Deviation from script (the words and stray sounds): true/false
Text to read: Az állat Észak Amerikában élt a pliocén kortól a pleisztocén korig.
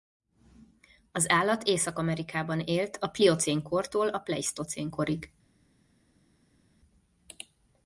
false